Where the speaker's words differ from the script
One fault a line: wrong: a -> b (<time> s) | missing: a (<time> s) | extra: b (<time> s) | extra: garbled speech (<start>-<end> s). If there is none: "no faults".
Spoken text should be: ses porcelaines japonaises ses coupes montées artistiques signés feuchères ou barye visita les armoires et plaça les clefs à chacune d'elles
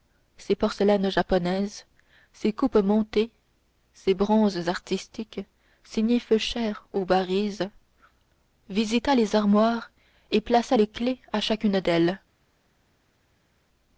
extra: ses bronzes (3.9 s)